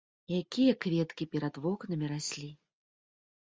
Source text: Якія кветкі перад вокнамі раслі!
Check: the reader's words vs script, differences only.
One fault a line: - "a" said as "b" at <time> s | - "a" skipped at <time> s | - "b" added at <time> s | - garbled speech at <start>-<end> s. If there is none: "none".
none